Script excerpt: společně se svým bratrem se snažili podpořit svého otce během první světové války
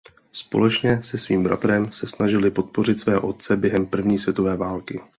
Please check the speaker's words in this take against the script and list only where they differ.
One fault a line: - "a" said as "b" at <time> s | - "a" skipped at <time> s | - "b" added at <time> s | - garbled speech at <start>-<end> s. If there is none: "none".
none